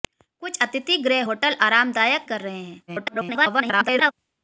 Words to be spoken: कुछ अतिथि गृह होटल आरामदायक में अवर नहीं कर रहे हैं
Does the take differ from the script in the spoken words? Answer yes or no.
yes